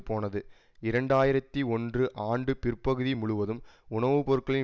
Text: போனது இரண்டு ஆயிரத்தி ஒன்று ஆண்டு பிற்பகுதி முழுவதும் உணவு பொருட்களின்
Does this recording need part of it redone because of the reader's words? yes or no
no